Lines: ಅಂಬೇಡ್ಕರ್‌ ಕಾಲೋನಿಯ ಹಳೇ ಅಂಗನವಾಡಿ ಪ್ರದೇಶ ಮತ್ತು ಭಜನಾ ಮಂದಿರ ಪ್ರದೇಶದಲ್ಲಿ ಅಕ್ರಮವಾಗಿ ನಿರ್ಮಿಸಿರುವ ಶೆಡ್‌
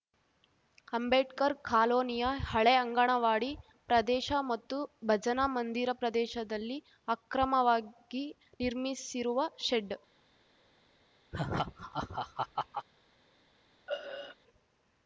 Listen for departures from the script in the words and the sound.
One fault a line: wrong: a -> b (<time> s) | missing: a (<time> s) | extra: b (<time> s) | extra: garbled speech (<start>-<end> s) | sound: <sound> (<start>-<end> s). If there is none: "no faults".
sound: laugh (11.3-12.9 s)
sound: throat clearing (13.9-14.4 s)